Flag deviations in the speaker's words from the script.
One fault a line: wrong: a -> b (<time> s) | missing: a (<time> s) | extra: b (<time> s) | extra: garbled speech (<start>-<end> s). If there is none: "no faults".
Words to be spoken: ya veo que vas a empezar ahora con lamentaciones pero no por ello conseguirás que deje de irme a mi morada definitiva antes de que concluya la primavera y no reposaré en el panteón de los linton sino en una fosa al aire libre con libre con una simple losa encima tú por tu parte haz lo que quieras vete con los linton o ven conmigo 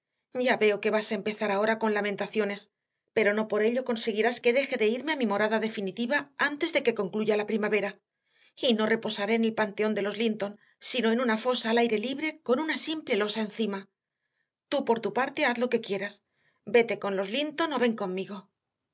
missing: libre con (12.6 s)